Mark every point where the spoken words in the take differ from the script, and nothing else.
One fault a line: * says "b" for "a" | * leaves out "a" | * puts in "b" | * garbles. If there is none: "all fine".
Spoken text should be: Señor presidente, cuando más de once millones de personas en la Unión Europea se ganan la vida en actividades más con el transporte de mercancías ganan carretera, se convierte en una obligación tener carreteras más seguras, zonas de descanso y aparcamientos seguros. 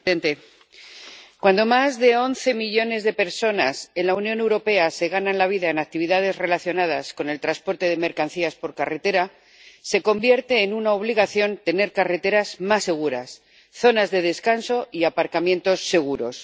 * says "relacionadas" for "más"
* says "por" for "ganan"